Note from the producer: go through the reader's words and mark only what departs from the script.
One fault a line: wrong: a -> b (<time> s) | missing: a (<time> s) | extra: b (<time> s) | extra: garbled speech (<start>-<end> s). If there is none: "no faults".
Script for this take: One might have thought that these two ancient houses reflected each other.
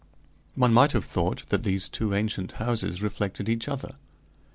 no faults